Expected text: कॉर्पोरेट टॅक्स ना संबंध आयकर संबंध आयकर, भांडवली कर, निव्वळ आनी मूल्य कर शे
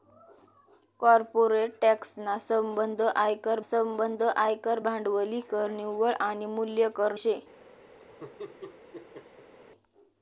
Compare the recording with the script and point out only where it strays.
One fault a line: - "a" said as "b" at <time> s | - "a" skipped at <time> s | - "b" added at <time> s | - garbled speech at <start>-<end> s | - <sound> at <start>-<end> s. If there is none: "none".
- laugh at 8.0-9.5 s